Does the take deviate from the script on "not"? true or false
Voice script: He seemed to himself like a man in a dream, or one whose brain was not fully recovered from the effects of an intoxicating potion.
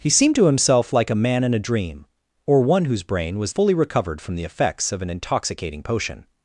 true